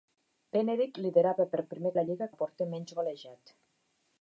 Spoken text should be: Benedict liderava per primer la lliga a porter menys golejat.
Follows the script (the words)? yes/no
yes